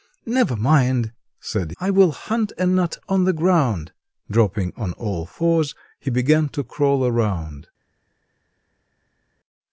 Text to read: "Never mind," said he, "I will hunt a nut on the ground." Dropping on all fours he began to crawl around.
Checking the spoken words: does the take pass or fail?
fail